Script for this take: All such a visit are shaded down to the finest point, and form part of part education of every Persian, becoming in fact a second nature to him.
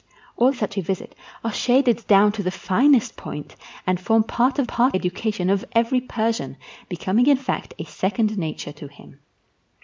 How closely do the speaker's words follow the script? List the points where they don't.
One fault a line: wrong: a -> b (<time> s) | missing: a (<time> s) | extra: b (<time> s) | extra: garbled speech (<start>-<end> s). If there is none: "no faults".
no faults